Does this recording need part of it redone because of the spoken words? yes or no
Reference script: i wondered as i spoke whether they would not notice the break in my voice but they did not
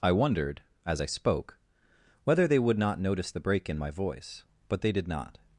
no